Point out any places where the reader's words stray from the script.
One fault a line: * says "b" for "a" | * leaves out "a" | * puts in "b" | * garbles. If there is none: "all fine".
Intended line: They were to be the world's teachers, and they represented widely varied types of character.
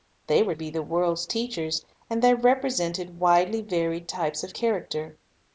* leaves out "to"